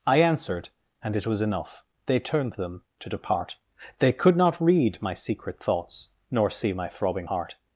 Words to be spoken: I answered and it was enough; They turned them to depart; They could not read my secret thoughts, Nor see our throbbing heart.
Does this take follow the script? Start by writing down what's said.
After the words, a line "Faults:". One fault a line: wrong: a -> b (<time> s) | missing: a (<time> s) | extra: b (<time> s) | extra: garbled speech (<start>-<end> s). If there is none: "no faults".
I answered and it was enough; They turned them to depart; They could not read my secret thoughts, Nor see my throbbing heart.
Faults:
wrong: our -> my (6.7 s)